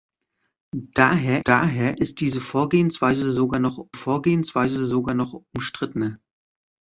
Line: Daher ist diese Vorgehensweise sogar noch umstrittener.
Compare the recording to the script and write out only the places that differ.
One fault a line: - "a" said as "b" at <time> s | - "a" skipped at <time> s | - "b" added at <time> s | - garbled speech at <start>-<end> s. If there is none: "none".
- "daher" added at 1.4 s
- "Vorgehensweise sogar noch" added at 3.9 s